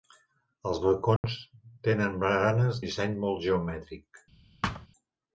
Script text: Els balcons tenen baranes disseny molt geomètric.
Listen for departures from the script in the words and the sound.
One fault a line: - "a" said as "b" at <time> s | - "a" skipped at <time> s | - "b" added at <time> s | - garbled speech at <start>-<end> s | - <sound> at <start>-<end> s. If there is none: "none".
- dropout at 1.2-1.2 s
- thud at 4.6-4.9 s